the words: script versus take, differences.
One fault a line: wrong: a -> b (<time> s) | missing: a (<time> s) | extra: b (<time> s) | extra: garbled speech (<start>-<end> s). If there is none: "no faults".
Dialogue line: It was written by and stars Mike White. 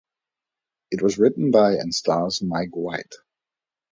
no faults